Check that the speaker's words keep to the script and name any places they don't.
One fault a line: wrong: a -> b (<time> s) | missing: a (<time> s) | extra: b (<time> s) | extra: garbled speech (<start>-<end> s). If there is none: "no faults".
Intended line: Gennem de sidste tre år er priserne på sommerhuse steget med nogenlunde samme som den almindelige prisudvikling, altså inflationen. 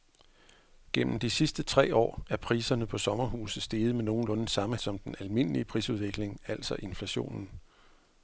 no faults